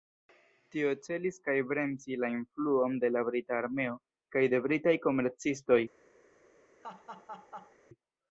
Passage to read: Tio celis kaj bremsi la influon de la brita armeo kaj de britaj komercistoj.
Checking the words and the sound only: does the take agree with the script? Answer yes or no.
no